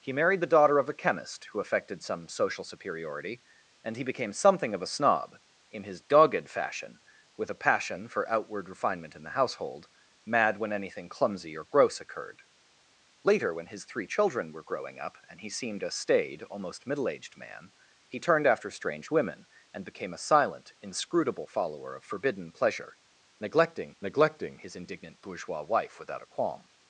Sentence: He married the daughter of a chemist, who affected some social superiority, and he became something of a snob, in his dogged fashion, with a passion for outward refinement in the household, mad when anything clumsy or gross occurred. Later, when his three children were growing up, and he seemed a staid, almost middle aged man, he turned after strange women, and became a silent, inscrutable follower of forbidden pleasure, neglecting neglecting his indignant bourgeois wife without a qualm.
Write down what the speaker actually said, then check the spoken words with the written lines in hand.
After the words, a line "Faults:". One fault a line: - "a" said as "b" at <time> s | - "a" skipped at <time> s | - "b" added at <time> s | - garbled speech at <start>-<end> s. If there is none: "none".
He married the daughter of a chemist, who affected some social superiority, and he became something of a snob, in his dogged fashion, with a passion for outward refinement in the household, mad when anything clumsy or gross occurred. Later, when his three children were growing up, and he seemed a staid, almost middle aged man, he turned after strange women, and became a silent, inscrutable follower of forbidden pleasure, neglecting neglecting his indignant bourgeois wife without a qualm.
Faults:
none